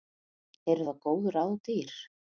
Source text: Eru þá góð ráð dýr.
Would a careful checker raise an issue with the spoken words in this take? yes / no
no